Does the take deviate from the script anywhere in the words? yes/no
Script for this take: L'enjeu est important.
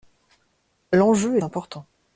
no